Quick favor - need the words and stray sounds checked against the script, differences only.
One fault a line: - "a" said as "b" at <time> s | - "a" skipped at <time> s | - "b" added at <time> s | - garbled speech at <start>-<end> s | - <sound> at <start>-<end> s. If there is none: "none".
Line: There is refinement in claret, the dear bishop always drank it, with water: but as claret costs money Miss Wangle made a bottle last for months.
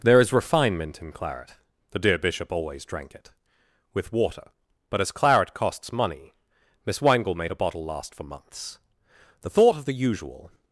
- "The thought of the usual" added at 9.4 s